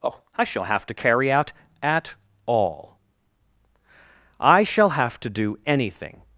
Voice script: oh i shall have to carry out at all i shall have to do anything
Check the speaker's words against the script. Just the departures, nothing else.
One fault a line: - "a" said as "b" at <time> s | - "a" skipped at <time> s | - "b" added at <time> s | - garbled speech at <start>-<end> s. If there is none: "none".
none